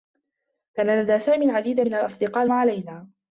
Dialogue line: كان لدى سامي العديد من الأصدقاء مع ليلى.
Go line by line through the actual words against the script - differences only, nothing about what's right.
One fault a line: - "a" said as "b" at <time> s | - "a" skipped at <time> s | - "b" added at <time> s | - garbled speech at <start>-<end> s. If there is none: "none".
none